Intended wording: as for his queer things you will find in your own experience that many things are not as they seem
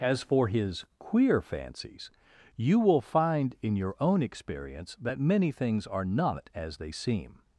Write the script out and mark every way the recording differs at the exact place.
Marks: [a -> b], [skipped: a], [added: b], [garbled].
as for his queer [things -> fancies] you will find in your own experience that many things are not as they seem